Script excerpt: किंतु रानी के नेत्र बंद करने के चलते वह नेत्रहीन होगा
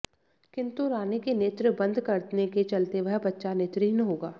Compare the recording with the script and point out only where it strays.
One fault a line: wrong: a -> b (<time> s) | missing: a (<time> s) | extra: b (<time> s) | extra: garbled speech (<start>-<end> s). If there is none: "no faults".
extra: बच्चा (3.2 s)